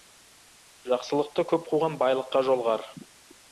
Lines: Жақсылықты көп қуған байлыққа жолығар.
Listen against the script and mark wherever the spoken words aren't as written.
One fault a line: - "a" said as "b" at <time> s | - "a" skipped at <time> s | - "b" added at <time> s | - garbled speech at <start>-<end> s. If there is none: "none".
none